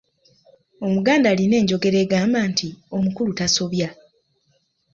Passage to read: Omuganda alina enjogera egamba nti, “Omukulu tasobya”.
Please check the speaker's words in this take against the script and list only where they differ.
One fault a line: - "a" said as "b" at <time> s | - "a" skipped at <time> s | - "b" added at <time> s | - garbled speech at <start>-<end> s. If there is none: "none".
none